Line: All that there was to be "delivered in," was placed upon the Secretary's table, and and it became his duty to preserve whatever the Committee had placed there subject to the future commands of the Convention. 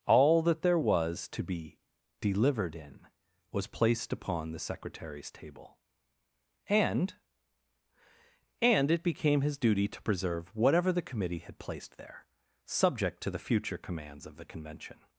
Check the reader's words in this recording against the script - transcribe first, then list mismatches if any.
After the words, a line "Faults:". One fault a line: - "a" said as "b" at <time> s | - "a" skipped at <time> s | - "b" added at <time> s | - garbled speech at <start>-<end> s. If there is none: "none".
All that there was to be "delivered in," was placed upon the Secretary's table, and and it became his duty to preserve whatever the Committee had placed there subject to the future commands of the Convention.
Faults:
none